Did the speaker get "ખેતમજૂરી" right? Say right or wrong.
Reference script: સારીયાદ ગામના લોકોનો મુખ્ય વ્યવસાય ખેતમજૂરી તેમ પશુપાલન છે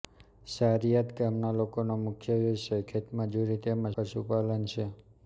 right